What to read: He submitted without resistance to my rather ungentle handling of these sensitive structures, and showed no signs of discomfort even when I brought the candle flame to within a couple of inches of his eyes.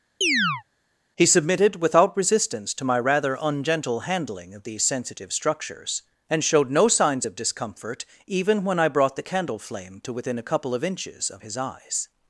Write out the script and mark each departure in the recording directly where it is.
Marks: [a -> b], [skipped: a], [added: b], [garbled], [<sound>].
[chirp] He submitted without resistance to my rather ungentle handling of these sensitive structures, and showed no signs of discomfort even when I brought the candle flame to within a couple of inches of his eyes.